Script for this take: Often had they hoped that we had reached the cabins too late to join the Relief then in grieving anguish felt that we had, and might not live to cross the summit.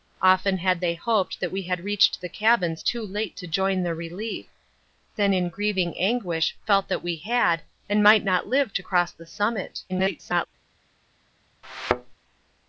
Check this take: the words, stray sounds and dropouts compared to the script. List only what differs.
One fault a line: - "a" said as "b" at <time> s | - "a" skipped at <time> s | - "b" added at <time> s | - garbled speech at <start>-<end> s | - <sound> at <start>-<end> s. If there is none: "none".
- garbled speech at 9.9-10.5 s
- thud at 11.6-12.2 s